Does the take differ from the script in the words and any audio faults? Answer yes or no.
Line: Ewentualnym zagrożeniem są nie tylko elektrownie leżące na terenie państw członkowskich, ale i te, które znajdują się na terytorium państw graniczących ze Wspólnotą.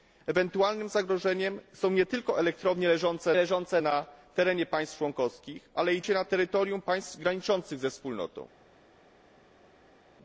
yes